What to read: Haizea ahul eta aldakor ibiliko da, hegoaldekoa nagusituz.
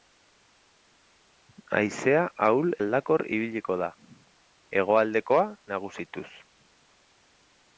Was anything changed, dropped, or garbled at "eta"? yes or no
yes